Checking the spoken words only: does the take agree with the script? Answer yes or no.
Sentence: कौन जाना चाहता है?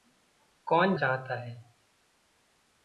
no